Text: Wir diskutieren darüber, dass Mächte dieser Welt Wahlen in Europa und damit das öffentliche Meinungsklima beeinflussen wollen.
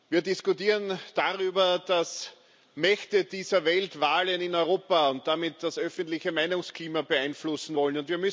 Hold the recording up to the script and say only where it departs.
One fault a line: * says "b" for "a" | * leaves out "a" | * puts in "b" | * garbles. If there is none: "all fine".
all fine